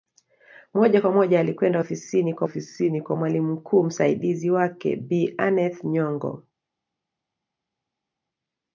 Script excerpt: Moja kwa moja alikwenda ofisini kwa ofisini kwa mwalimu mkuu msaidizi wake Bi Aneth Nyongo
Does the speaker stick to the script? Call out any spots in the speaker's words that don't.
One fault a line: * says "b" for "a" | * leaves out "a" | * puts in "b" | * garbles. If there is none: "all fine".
all fine